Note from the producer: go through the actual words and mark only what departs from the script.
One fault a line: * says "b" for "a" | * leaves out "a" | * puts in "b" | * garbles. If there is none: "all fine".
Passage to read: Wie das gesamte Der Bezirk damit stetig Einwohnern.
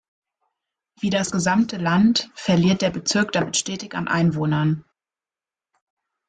* puts in "Land verliert"
* puts in "an"